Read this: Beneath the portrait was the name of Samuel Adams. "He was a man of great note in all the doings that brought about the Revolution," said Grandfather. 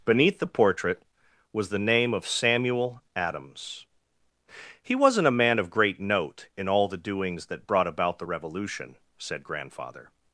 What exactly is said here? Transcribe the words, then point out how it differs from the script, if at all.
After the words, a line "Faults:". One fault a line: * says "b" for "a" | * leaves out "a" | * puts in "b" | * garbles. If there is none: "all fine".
Beneath the portrait was the name of Samuel Adams. "He wasn't a man of great note in all the doings that brought about the Revolution," said Grandfather.
Faults:
* says "wasn't" for "was"